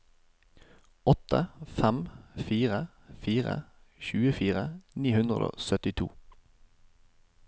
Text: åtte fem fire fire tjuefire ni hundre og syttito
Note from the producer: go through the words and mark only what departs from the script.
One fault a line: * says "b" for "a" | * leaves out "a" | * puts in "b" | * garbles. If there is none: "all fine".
all fine